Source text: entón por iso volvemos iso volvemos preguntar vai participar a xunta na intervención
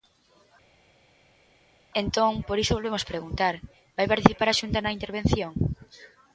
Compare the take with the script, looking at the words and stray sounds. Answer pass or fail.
fail